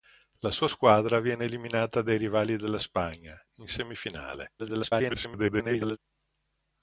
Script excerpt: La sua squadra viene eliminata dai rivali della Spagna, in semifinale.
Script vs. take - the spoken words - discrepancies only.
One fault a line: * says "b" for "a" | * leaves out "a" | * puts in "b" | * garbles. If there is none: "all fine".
* garbles